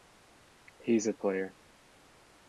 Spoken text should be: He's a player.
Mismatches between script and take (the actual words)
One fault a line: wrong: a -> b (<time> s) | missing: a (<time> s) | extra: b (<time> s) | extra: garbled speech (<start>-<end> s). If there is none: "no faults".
no faults